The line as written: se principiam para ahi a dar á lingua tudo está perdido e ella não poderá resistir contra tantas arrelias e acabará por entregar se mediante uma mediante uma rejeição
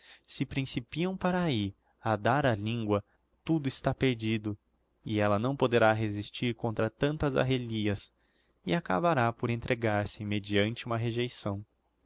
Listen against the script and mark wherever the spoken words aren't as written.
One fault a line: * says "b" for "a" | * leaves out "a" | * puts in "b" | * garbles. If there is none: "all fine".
* leaves out "mediante uma"